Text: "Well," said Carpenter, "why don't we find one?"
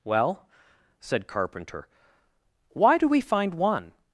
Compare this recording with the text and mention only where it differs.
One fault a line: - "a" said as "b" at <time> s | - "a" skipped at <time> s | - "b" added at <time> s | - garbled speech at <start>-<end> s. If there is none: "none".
- "don't" said as "do" at 3.0 s